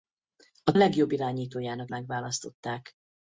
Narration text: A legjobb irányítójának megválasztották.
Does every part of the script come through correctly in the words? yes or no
yes